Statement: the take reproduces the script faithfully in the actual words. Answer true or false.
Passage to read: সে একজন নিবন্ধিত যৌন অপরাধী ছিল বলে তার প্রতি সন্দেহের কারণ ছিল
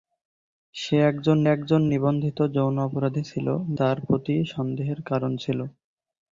false